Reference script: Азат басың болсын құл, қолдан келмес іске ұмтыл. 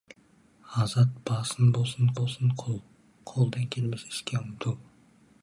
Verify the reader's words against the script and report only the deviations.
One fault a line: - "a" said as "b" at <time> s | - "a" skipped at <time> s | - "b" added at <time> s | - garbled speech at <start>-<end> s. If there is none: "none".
- "болсын" added at 2.2 s